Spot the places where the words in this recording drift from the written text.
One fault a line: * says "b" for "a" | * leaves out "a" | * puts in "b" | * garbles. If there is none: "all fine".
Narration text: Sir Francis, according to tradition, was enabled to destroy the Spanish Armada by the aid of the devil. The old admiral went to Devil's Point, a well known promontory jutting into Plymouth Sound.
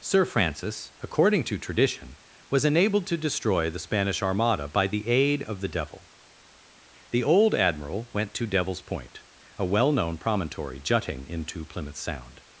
all fine